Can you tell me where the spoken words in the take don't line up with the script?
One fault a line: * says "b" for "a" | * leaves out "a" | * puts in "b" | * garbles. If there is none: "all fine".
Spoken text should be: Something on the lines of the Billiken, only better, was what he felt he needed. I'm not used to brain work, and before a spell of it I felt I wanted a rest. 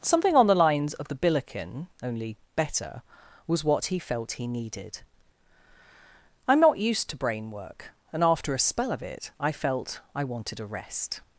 * says "after" for "before"